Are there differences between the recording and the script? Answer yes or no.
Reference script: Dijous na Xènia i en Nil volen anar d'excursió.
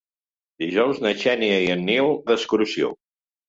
yes